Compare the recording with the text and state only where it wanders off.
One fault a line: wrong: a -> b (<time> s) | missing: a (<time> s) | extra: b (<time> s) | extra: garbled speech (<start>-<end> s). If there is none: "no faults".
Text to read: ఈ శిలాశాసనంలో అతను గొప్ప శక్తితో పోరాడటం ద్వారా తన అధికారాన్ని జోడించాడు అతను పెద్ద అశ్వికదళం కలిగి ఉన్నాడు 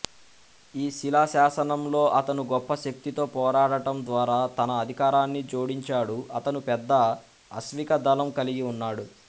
no faults